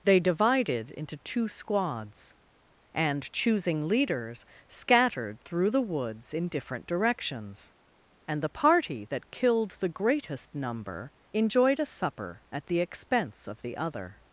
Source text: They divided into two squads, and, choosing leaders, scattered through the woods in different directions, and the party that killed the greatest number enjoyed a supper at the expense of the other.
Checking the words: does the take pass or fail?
pass